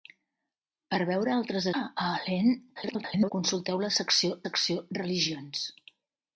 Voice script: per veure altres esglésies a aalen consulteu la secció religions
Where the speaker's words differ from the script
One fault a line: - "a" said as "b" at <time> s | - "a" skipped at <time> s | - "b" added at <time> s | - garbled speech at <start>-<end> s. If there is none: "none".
- "esglésies" skipped at 1.7 s
- garbled speech at 2.8-3.3 s
- "secció" added at 4.5 s